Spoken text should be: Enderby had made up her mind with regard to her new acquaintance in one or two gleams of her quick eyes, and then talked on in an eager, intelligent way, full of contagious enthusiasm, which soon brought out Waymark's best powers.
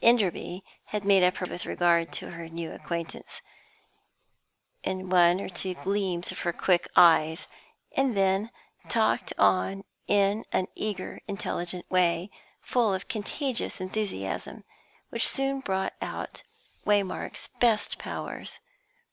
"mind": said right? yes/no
no